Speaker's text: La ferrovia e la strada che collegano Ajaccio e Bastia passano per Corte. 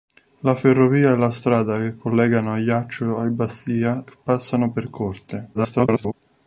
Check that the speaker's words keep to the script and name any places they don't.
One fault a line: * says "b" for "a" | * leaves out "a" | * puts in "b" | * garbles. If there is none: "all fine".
* garbles